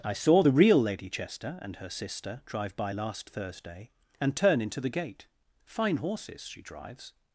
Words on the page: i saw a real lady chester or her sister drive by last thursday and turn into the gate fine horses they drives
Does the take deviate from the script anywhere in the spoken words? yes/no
yes